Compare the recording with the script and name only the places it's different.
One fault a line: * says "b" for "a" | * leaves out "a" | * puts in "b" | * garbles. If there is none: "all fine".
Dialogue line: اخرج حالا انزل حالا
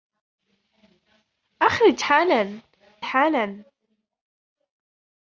* leaves out "انزل"